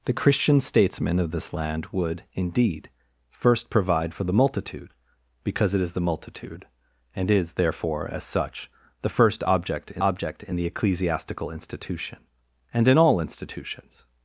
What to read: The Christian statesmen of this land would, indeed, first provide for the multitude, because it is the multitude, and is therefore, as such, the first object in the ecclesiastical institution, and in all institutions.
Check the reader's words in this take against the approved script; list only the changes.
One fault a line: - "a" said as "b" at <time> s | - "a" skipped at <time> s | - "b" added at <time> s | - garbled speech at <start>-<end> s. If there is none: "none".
- "object in" added at 10.0 s